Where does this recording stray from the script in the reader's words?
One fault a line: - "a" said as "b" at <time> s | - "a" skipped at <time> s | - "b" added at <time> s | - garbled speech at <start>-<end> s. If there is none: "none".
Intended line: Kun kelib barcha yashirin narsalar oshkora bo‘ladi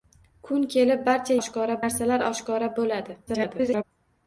- "yashirin" said as "oshkora" at 1.4 s
- garbled speech at 3.3-3.8 s